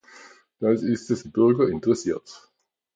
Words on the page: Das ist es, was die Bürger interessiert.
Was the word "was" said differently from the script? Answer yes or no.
yes